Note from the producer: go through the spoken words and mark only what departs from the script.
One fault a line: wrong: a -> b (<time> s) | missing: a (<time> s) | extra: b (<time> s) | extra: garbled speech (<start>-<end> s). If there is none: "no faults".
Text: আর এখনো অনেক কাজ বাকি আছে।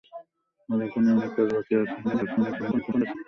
extra: garbled speech (2.0-3.2 s)